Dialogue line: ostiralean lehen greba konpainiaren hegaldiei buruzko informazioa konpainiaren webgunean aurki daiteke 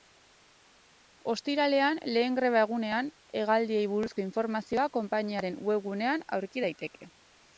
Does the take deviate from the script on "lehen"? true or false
false